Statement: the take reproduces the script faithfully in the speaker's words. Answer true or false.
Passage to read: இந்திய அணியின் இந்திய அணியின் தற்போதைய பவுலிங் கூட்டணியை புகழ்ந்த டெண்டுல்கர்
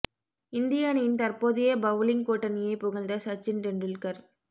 false